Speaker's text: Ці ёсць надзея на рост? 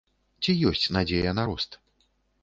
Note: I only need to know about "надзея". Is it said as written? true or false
true